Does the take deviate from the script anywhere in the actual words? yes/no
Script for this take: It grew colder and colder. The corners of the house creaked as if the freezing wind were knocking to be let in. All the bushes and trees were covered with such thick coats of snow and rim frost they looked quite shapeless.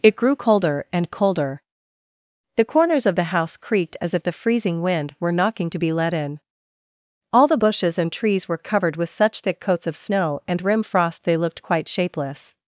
no